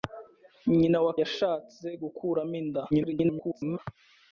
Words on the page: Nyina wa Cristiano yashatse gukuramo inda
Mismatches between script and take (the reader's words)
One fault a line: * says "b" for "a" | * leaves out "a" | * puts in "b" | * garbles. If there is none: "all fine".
* leaves out "Cristiano"
* garbles